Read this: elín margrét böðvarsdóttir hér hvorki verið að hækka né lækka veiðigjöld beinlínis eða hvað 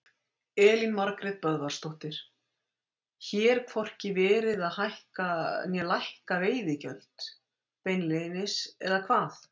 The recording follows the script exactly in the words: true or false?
true